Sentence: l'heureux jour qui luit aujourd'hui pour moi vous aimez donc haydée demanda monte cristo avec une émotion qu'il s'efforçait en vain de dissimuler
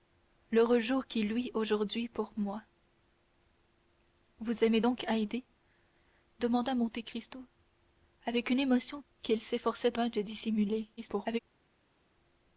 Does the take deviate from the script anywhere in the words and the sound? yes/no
yes